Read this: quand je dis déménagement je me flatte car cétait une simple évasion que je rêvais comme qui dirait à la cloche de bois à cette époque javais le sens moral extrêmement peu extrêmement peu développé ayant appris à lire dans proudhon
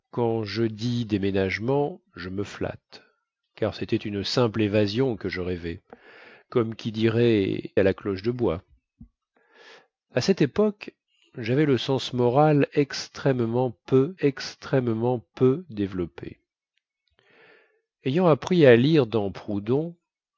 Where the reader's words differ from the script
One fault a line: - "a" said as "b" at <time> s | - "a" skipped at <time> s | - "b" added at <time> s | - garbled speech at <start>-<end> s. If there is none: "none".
none